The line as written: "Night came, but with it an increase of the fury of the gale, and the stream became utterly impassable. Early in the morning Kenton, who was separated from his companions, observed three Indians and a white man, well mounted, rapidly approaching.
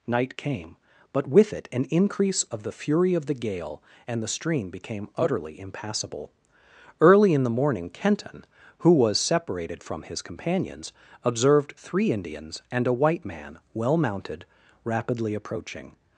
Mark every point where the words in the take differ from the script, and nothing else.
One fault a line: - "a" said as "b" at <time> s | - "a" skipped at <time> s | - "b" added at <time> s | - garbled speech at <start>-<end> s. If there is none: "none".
none